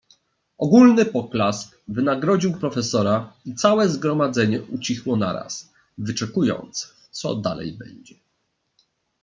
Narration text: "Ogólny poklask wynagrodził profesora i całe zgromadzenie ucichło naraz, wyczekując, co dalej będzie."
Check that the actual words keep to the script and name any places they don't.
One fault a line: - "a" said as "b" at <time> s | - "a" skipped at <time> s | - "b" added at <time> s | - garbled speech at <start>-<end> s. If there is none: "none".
none